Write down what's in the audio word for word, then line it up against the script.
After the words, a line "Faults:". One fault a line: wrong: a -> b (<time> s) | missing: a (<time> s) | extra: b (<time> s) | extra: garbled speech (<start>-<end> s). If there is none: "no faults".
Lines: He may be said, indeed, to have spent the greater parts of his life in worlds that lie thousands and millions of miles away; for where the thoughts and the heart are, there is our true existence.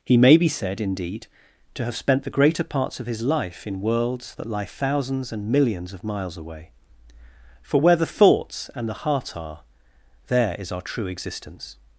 He may be said, indeed, to have spent the greater parts of his life in worlds that lie thousands and millions of miles away; for where the thoughts and the heart are, there is our true existence.
Faults:
no faults